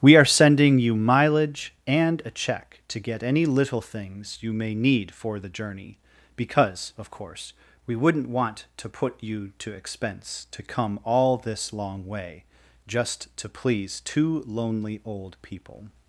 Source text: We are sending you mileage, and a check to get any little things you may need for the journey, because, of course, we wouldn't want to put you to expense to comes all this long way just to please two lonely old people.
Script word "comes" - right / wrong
wrong